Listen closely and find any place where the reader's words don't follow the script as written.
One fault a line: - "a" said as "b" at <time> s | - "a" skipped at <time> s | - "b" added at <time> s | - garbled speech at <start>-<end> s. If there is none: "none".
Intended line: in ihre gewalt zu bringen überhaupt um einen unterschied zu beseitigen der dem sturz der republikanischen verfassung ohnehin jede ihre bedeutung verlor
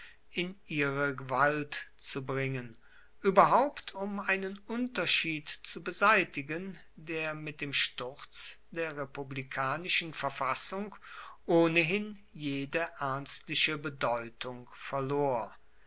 - "mit" added at 7.3 s
- "ihre" said as "ernstliche" at 13.0 s